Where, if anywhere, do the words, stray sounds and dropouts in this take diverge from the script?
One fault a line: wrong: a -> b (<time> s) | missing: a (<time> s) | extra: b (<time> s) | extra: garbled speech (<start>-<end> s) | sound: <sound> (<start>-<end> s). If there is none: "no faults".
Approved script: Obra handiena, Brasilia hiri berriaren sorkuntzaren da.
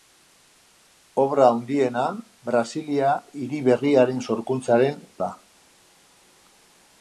no faults